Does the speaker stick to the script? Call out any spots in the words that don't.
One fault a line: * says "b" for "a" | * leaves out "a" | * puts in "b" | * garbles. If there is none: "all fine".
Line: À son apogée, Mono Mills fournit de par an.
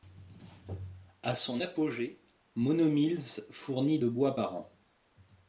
* puts in "bois"